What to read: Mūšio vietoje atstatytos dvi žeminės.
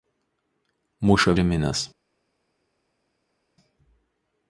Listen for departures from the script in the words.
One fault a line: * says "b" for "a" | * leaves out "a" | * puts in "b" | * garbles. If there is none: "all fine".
* leaves out "vietoje atstatytos dvi"